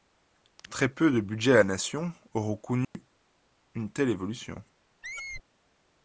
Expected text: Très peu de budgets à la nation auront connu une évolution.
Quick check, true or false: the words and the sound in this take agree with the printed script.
false